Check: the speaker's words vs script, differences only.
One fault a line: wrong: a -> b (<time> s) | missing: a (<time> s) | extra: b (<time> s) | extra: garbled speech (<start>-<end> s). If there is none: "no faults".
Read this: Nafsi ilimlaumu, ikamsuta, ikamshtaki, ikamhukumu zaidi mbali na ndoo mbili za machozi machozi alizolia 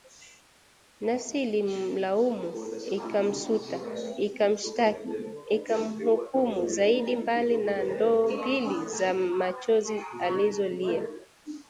missing: machozi (10.0 s)